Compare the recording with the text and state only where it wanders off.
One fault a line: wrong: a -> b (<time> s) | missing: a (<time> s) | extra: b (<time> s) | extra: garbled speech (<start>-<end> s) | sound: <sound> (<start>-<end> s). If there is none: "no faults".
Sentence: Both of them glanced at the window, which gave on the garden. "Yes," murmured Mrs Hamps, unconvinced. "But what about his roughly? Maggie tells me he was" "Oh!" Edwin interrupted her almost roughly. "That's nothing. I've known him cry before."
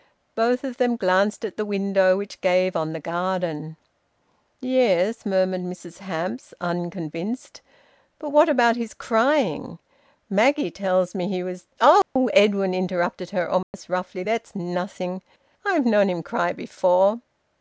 wrong: roughly -> crying (8.9 s)
sound: dropout (12.0-12.2 s)
sound: dropout (13.6-13.7 s)